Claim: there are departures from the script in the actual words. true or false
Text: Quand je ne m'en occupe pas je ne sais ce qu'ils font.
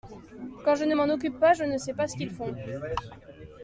true